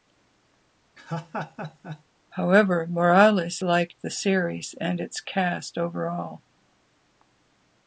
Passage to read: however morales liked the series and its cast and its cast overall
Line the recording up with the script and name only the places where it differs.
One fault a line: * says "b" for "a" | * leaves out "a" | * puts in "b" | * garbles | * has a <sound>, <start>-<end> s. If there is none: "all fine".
* has a laugh, 1.0-2.0 s
* leaves out "and its cast"